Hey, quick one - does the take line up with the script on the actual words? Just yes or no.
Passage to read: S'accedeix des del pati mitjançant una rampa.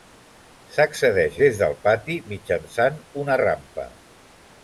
yes